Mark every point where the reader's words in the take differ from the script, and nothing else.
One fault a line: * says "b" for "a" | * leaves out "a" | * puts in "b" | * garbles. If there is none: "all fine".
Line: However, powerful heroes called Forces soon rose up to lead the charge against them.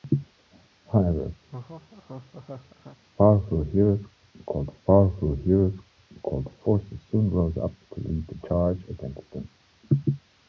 * puts in "powerful heroes called"